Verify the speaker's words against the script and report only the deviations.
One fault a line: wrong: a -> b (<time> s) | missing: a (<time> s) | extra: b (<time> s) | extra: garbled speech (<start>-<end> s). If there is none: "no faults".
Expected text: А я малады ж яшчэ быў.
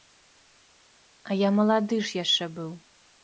no faults